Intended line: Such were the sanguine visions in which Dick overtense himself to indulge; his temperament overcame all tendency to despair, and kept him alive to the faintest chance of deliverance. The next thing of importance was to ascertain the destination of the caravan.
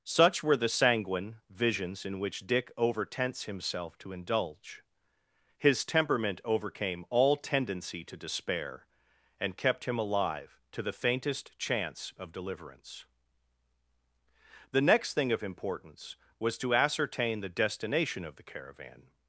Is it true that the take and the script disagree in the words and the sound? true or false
false